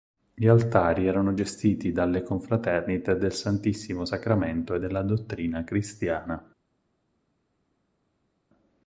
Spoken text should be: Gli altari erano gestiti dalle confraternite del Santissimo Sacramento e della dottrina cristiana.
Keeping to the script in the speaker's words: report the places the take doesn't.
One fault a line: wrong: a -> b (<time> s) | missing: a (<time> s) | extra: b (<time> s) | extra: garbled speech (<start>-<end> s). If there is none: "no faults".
no faults